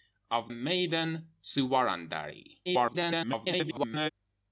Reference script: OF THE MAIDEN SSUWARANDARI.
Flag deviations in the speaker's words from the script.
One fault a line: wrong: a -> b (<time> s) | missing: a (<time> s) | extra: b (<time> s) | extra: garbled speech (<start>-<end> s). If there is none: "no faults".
missing: THE (0.5 s)
extra: garbled speech (2.6-4.1 s)